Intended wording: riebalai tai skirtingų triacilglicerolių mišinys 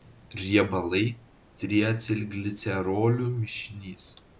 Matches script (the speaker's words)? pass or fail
fail